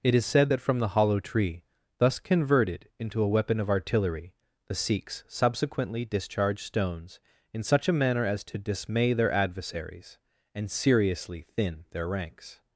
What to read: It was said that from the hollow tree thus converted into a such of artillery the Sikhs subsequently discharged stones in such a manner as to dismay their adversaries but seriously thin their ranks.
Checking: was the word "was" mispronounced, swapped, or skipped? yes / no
yes